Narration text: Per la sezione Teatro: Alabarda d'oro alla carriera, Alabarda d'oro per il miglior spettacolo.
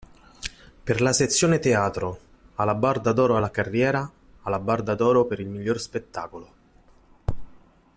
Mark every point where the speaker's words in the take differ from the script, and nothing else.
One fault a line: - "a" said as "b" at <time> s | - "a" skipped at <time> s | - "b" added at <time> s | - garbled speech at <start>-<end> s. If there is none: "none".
none